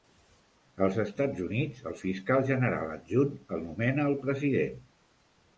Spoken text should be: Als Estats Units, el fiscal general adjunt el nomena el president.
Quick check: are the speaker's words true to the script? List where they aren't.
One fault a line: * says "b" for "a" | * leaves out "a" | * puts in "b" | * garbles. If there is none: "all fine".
all fine